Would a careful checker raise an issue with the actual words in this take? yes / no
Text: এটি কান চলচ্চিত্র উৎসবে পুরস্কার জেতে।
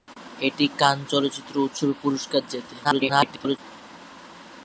yes